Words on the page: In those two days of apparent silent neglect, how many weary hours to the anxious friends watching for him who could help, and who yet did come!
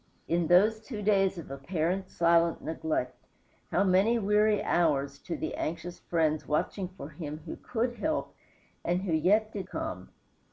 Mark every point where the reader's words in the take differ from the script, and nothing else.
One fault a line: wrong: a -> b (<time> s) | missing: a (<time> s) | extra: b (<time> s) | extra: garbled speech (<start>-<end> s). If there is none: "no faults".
no faults